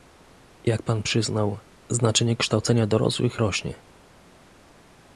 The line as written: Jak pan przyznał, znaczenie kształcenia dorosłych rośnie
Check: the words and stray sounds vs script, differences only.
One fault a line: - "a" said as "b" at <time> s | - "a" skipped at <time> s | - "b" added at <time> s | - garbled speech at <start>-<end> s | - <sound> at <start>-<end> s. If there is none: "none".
none